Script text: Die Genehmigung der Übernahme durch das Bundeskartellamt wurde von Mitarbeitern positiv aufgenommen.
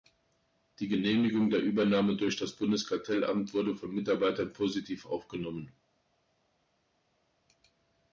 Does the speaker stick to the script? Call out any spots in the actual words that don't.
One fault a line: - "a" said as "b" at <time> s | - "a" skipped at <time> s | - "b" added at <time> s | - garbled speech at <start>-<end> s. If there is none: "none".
none